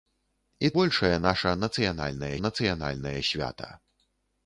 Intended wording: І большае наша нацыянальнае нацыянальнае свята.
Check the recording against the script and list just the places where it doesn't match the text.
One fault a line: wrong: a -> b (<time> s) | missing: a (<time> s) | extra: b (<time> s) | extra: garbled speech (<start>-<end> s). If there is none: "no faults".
no faults